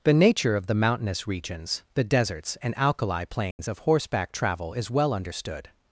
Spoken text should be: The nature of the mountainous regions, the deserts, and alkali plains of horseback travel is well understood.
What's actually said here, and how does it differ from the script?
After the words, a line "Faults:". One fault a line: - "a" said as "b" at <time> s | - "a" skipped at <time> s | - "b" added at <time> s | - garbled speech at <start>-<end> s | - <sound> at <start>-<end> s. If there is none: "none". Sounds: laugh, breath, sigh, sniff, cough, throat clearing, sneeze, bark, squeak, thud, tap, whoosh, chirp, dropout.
The nature of the mountainous regions, the deserts, and alkali plains of horseback travel is well understood.
Faults:
- dropout at 3.5-3.6 s